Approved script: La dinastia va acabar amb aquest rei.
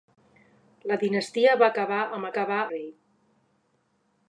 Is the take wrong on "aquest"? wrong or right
wrong